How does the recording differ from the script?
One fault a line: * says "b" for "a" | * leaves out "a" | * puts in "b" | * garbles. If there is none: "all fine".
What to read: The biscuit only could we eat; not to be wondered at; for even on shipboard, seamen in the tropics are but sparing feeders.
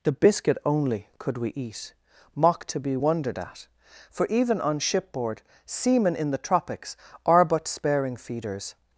* says "mock" for "not"